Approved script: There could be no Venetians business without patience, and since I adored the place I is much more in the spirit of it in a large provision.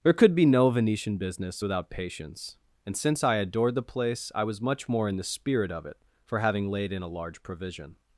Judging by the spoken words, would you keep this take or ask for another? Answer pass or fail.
fail